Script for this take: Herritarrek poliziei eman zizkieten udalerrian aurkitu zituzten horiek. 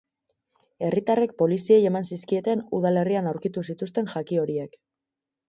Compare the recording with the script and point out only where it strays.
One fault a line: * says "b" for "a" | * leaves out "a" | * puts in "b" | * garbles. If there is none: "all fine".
* puts in "jaki"